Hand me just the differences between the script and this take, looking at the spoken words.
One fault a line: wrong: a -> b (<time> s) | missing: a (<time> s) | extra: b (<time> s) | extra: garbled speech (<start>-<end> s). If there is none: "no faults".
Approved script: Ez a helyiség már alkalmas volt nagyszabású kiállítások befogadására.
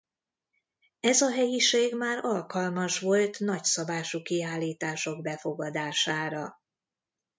no faults